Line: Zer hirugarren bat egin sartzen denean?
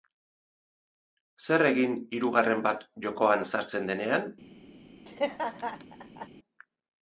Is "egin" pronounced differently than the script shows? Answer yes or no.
yes